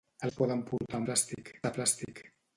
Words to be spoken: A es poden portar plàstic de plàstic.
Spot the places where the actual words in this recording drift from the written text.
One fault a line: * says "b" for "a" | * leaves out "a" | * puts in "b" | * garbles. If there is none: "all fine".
all fine